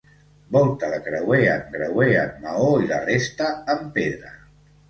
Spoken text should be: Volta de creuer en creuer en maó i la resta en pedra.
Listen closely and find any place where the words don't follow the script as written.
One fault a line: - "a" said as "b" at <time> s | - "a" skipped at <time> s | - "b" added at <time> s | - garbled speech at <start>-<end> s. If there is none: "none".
none